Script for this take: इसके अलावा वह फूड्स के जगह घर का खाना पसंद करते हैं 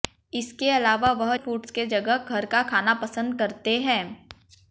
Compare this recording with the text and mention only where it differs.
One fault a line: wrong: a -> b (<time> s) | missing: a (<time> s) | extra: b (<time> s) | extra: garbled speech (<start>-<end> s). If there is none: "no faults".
no faults